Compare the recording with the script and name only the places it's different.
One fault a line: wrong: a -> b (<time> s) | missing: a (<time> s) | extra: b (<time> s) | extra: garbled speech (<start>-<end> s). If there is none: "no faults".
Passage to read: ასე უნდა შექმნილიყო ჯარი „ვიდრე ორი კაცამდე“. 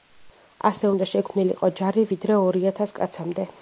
extra: ათას (2.7 s)